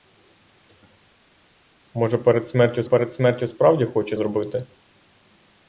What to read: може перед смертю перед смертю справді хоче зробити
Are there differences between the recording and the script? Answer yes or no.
no